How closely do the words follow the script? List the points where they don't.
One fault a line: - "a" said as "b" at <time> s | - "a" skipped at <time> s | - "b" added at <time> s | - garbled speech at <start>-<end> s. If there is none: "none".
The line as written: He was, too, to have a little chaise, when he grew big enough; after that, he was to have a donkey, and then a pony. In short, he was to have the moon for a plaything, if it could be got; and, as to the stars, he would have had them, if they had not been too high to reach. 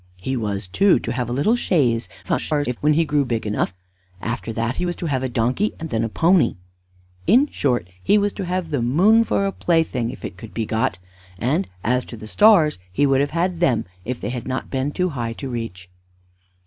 - garbled speech at 2.2-2.8 s